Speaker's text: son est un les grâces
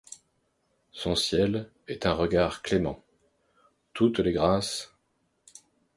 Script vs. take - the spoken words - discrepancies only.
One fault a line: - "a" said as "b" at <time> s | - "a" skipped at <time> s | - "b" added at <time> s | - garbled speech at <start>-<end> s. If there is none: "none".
- "ciel" added at 1.1 s
- "regard clément toutes" added at 2.1 s